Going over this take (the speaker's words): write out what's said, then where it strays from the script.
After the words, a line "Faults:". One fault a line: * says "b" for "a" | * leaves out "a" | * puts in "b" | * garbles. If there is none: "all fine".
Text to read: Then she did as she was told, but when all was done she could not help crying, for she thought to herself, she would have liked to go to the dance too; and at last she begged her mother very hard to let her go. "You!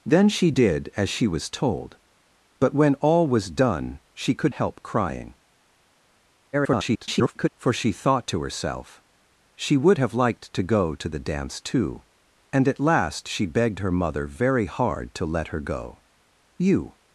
Then she did as she was told, but when all was done she could help crying, [garbled] for she thought to herself, she would have liked to go to the dance too; and at last she begged her mother very hard to let her go. "You!
Faults:
* leaves out "not"
* garbles